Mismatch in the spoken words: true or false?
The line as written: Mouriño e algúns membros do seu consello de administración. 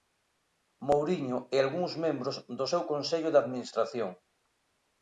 false